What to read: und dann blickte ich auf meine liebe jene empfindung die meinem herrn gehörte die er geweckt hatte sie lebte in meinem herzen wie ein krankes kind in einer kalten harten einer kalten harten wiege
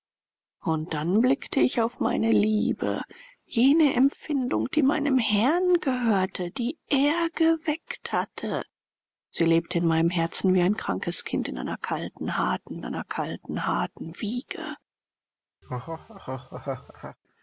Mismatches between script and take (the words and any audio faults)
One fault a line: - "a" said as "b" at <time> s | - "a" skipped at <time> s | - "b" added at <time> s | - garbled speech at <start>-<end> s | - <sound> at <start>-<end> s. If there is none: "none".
- laugh at 15.6-17.2 s